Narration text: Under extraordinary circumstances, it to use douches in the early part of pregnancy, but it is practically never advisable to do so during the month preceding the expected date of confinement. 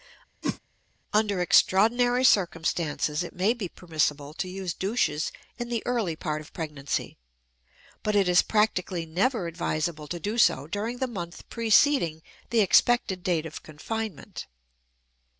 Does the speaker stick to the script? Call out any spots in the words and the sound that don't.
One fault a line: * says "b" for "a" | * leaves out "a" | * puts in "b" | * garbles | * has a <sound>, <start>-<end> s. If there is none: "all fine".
* has a whoosh, 0.4-0.6 s
* puts in "may be permissible"